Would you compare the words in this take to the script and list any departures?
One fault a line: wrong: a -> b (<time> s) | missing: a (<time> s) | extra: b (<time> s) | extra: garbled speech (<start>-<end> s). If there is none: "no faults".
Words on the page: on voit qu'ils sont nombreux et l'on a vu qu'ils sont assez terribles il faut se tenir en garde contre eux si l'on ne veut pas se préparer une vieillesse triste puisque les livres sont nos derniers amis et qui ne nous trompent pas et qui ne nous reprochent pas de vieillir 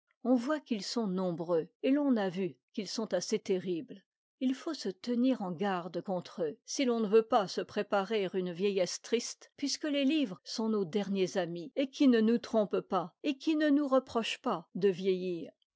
no faults